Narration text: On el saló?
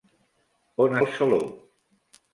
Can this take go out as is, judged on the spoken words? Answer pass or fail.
pass